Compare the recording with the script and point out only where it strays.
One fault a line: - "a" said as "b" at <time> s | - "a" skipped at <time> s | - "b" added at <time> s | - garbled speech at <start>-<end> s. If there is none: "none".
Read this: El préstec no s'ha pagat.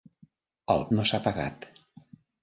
- "préstec" skipped at 0.8 s